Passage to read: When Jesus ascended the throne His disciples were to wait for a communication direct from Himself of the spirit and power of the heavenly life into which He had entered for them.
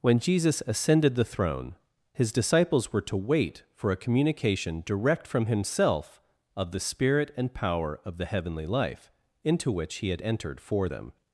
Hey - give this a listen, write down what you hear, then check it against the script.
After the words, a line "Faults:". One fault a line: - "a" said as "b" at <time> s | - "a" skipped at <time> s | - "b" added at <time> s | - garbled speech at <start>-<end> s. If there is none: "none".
When Jesus ascended the throne His disciples were to wait for a communication direct from Himself of the spirit and power of the heavenly life into which He had entered for them.
Faults:
none